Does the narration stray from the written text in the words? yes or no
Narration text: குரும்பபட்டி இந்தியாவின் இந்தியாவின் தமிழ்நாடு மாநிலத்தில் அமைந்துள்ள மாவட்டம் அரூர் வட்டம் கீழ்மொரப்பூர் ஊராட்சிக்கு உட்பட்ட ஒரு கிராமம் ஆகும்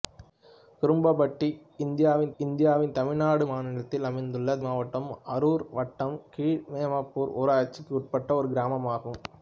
no